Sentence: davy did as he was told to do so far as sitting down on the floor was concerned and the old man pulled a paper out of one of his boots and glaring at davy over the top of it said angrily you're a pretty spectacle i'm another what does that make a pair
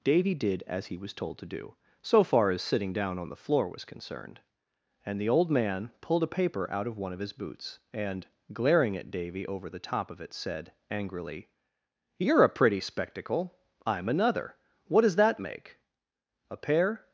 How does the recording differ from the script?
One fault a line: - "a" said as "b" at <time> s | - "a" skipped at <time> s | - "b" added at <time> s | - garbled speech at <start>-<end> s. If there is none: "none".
none